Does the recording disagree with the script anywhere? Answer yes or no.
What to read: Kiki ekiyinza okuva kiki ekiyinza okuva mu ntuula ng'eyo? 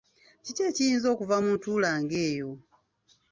yes